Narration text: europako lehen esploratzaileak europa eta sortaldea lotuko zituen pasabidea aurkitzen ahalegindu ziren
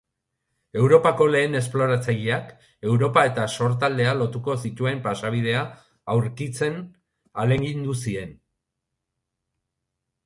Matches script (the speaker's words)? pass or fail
pass